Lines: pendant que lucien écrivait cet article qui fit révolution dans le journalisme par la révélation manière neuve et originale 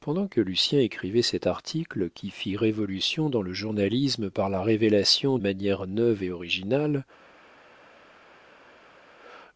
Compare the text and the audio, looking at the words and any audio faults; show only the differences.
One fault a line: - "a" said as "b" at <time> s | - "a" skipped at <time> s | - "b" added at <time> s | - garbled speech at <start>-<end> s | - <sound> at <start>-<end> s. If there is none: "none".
none